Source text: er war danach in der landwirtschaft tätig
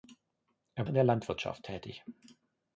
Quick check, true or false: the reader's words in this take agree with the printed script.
false